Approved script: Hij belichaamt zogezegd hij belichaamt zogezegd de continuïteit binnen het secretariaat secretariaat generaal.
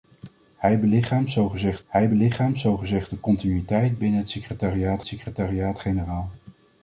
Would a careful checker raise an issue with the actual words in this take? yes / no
no